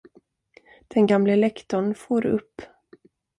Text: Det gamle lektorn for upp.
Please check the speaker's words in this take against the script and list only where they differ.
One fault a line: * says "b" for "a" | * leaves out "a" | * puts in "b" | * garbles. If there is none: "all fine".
* says "Den" for "Det"